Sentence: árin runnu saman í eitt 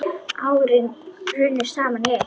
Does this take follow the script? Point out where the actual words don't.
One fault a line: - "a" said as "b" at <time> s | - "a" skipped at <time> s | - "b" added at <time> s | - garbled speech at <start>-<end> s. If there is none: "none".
none